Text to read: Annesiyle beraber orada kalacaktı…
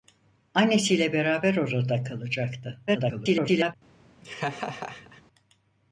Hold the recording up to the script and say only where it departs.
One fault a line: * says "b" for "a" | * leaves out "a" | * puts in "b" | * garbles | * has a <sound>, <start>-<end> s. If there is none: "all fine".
* garbles
* has a laugh, 4.2-5.2 s